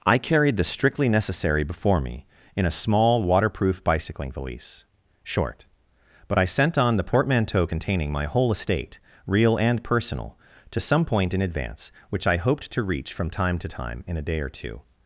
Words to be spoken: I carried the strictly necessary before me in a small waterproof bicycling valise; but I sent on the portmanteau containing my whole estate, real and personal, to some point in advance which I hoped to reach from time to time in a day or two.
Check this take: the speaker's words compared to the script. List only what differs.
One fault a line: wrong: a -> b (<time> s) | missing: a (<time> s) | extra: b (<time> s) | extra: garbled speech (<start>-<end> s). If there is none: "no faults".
extra: short (5.2 s)